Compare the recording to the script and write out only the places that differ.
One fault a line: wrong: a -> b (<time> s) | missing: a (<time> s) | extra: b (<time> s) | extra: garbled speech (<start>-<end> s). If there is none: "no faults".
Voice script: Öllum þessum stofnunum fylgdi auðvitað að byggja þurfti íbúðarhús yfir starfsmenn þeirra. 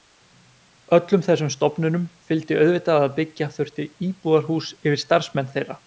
no faults